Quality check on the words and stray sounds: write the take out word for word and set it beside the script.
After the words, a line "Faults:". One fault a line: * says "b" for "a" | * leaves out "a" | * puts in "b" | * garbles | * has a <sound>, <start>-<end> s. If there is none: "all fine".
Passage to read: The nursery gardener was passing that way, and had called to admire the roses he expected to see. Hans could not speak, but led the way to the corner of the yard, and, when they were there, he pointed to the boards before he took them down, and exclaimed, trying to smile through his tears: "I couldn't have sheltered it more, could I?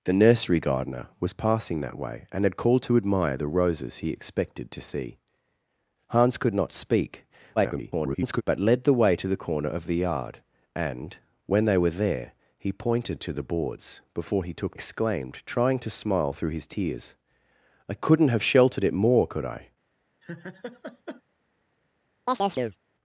The nursery gardener was passing that way, and had called to admire the roses he expected to see. Hans could not speak, [garbled] but led the way to the corner of the yard, and, when they were there, he pointed to the boards before he took exclaimed, trying to smile through his tears: "I couldn't have sheltered it more, could I?
Faults:
* garbles
* leaves out "them down and"
* has a laugh, 20.2-21.2 s
* has a chirp, 22.3-22.8 s